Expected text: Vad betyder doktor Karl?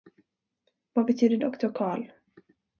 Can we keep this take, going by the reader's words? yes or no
yes